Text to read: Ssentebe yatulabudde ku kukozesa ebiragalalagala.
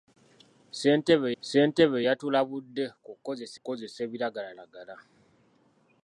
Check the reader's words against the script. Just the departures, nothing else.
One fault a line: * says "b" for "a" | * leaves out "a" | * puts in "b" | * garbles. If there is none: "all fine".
* puts in "ssentebe"
* puts in "kukozesa"